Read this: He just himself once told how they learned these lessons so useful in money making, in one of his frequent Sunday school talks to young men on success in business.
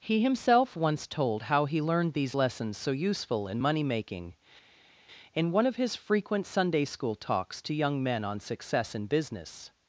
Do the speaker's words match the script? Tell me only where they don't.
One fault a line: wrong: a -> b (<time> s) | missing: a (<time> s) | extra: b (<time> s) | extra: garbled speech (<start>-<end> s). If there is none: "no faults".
missing: just (0.2 s)
wrong: they -> he (1.7 s)